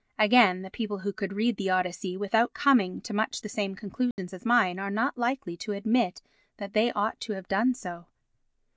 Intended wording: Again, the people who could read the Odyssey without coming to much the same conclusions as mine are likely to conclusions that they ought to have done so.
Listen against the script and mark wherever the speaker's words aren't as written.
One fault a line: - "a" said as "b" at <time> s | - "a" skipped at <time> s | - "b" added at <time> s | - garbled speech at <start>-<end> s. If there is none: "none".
- "not" added at 4.9 s
- "conclusions" said as "admit" at 5.7 s